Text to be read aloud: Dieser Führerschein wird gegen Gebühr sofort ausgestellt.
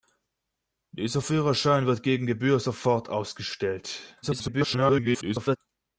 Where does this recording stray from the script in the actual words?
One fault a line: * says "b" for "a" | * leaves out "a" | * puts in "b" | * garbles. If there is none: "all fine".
* garbles